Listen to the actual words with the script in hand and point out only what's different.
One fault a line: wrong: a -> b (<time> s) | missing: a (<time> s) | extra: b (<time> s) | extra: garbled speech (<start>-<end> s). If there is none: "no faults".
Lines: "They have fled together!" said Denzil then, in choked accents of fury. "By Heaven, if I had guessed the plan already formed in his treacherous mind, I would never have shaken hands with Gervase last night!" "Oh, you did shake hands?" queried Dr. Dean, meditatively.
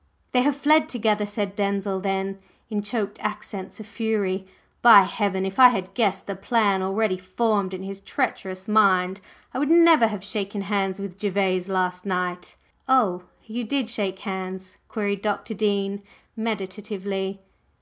no faults